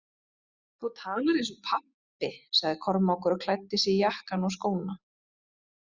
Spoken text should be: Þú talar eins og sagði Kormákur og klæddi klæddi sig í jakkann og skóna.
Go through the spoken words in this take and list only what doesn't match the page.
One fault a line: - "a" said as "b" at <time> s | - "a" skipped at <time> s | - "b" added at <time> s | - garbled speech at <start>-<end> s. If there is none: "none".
- "pabbi" added at 1.7 s
- "klæddi" skipped at 3.8 s